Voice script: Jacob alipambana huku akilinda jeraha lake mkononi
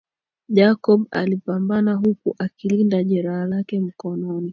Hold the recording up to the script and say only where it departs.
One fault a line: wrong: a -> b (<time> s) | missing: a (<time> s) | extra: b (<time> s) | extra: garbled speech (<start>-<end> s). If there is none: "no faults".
no faults